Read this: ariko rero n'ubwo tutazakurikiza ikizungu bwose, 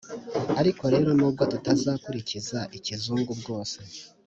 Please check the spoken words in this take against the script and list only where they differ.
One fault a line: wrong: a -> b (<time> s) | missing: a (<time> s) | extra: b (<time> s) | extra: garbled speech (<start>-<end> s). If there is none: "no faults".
no faults